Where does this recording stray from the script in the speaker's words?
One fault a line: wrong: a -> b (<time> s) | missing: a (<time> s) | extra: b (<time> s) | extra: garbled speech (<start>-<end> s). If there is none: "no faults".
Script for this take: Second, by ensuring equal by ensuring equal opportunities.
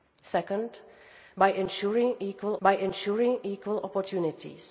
no faults